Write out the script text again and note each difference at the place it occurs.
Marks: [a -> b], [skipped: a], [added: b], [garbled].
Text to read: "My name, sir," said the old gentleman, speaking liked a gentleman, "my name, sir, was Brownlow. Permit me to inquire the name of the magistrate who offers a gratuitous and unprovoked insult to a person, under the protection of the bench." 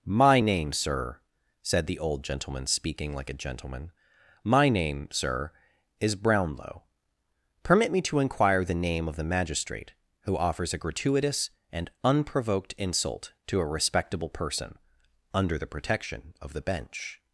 "My name, sir," said the old gentleman, speaking [liked -> like] a gentleman, "my name, sir, [was -> is] Brownlow. Permit me to inquire the name of the magistrate who offers a gratuitous and unprovoked insult to a [added: respectable] person, under the protection of the bench."